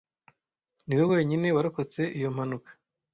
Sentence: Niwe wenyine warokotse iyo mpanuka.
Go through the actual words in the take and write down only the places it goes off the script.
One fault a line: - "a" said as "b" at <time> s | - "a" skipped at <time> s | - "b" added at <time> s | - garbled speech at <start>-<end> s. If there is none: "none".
none